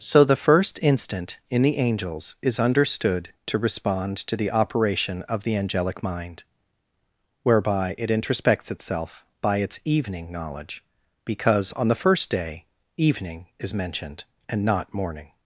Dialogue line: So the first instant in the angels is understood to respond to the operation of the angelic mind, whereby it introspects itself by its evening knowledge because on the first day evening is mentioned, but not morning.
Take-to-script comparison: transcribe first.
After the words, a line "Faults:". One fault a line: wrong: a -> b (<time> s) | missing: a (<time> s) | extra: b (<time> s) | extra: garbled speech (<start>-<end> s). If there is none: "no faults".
So the first instant in the angels is understood to respond to the operation of the angelic mind, whereby it introspects itself by its evening knowledge because on the first day evening is mentioned, and not morning.
Faults:
wrong: but -> and (14.5 s)